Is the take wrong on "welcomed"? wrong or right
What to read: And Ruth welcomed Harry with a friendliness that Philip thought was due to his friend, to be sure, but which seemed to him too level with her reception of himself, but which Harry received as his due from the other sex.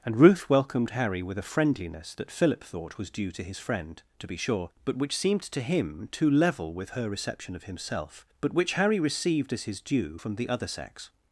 right